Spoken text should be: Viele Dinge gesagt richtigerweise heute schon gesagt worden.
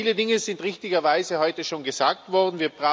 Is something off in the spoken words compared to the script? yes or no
yes